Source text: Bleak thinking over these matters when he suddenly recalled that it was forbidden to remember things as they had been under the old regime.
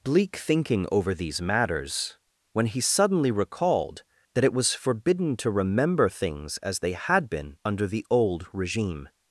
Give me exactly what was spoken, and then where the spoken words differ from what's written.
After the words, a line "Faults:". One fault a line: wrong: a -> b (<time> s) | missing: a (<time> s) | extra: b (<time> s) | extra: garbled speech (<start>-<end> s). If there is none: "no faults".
Bleak thinking over these matters when he suddenly recalled that it was forbidden to remember things as they had been under the old regime.
Faults:
no faults